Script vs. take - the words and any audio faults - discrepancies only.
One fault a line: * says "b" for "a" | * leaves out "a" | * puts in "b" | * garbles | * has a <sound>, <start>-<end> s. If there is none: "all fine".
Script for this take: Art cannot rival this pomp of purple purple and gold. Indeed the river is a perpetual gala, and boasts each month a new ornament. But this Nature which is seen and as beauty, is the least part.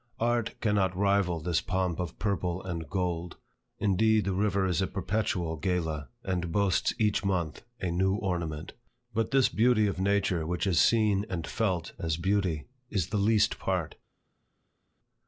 * leaves out "purple"
* puts in "beauty of"
* puts in "felt"